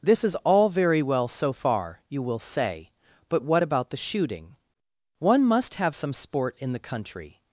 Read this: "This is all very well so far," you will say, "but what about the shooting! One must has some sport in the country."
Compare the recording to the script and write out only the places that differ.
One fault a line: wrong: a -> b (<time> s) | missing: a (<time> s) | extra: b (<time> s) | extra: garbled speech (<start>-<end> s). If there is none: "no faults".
wrong: has -> have (5.8 s)